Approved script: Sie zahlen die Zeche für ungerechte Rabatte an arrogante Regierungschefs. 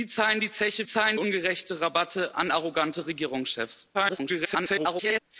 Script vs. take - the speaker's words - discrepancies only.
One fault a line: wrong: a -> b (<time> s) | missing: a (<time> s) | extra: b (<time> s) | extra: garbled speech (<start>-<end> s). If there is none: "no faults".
wrong: für -> zahlen (0.8 s)
extra: garbled speech (3.9-5.2 s)